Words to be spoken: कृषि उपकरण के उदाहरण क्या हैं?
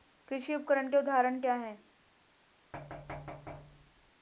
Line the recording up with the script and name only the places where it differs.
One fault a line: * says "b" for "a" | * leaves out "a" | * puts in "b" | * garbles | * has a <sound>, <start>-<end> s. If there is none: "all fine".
* has a thud, 2.7-4.1 s